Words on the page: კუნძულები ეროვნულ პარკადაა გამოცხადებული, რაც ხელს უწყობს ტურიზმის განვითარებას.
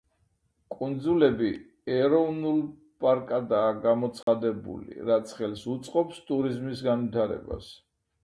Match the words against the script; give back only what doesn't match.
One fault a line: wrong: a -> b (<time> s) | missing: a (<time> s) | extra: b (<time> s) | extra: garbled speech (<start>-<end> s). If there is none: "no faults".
no faults